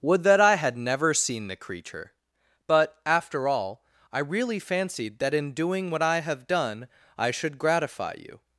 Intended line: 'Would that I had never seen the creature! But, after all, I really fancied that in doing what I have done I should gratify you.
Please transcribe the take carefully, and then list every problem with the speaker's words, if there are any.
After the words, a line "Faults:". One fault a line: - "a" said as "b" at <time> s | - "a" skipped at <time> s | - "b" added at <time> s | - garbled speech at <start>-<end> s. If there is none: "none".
'Would that I had never seen the creature! But, after all, I really fancied that in doing what I have done I should gratify you.
Faults:
none